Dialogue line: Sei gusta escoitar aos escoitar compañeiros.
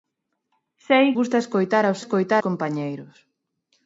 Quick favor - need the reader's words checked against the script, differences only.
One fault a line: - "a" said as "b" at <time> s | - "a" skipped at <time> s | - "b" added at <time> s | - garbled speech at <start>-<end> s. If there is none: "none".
none